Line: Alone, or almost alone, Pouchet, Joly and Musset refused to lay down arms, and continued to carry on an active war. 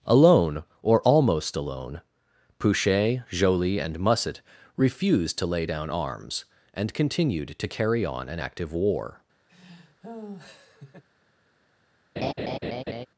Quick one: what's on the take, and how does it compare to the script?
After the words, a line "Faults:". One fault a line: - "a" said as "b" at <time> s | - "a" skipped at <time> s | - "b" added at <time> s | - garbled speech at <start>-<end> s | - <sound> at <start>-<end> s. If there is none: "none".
Alone, or almost alone, Pouchet, Joly and Musset refused to lay down arms, and continued to carry on an active war.
Faults:
- laugh at 9.5-11.0 s
- laugh at 12.2-13.1 s